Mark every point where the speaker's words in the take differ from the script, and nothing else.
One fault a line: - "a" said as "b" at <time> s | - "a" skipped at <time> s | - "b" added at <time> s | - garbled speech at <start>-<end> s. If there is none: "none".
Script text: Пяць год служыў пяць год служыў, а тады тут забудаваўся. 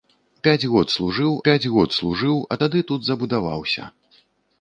none